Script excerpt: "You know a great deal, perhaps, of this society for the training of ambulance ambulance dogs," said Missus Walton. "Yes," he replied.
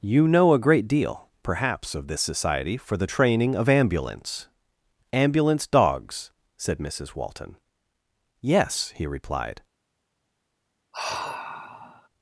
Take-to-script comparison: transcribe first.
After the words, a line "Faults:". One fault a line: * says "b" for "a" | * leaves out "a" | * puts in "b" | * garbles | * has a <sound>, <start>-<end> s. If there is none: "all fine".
"You know a great deal, perhaps, of this society for the training of ambulance ambulance dogs," said Missus Walton. "Yes," he replied.
Faults:
* has a sigh, 10.9-12.1 s